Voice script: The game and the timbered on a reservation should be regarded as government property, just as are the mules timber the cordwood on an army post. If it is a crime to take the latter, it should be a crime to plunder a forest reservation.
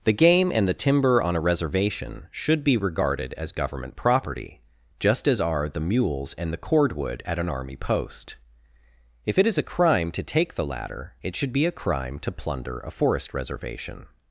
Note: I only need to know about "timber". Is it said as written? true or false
false